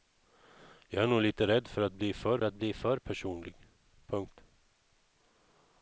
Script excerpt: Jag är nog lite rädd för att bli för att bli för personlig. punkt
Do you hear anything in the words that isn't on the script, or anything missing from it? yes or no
no